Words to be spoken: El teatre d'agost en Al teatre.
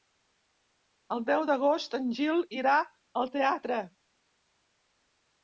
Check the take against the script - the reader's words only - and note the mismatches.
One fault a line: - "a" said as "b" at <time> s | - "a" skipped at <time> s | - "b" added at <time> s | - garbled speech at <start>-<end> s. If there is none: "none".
- "teatre" said as "deu" at 1.3 s
- "Gil irà" added at 2.2 s